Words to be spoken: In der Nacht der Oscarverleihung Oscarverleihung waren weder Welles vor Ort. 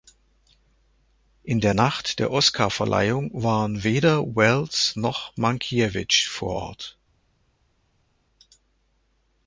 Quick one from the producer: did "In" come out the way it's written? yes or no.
yes